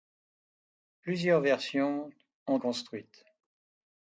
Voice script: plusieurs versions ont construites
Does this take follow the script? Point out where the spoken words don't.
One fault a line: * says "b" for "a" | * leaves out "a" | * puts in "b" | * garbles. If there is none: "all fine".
all fine